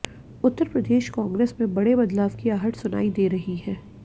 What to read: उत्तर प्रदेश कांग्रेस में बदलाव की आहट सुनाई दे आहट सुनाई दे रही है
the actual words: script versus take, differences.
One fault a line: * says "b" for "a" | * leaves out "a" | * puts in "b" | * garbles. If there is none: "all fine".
* puts in "बड़े"
* leaves out "आहट सुनाई दे"